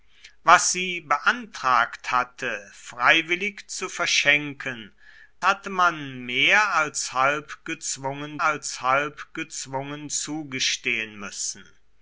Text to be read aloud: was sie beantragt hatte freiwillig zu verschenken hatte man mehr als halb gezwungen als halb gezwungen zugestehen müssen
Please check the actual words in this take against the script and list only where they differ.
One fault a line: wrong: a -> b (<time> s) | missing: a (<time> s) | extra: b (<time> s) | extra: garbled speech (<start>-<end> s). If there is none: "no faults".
no faults